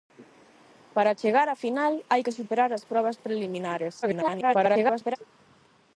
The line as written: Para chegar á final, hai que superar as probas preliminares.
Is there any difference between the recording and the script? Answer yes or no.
yes